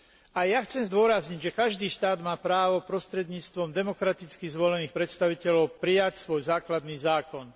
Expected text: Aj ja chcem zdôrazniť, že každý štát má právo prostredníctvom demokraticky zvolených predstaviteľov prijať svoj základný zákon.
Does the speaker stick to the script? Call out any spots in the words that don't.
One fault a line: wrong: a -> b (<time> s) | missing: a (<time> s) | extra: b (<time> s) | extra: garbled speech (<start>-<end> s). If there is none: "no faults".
no faults